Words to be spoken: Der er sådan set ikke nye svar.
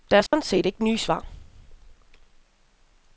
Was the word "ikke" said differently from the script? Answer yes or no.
no